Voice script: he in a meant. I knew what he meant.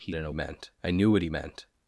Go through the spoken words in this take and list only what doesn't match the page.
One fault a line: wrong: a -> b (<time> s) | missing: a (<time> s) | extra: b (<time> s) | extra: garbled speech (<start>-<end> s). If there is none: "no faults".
no faults